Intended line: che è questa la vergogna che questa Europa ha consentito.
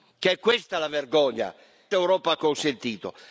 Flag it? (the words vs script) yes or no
yes